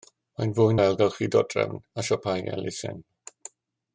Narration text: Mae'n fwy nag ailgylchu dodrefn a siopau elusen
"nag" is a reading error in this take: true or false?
true